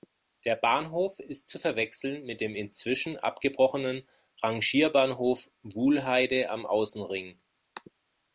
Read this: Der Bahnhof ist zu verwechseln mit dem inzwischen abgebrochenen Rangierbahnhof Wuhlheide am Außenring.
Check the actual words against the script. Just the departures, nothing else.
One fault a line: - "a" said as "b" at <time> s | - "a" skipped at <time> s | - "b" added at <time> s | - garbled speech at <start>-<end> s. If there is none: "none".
none